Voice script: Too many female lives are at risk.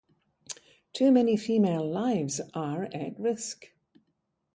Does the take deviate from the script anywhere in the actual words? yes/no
no